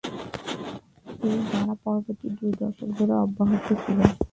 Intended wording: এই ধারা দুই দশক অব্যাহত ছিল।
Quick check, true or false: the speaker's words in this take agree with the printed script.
false